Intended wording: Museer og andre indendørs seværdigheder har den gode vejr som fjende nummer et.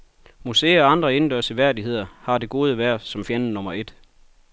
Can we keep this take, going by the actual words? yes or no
no